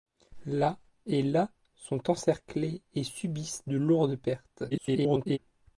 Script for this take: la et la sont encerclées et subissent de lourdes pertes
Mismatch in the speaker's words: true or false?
true